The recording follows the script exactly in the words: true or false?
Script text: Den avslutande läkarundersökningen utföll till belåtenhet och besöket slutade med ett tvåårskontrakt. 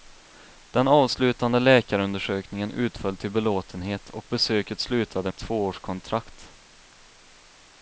false